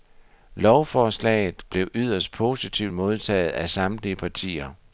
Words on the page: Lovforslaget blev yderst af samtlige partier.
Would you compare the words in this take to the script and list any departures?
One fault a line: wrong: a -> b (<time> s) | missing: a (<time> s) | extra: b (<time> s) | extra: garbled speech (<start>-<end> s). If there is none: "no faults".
extra: positivt modtaget (2.3 s)